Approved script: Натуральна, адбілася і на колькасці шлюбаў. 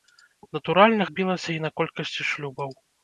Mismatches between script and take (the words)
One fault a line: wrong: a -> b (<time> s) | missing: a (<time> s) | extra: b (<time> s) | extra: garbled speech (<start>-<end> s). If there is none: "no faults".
no faults